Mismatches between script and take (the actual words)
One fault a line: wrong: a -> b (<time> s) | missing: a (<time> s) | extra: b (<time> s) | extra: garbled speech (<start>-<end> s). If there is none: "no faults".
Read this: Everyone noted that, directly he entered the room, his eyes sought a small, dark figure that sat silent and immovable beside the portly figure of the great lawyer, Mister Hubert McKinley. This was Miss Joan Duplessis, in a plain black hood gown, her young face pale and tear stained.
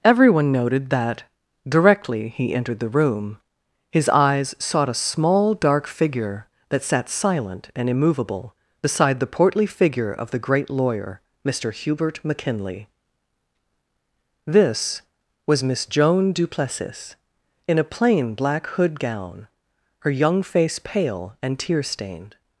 no faults